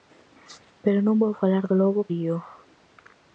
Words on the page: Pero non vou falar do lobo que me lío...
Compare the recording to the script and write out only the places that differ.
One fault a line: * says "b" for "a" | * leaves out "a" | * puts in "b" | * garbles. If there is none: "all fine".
* leaves out "que me"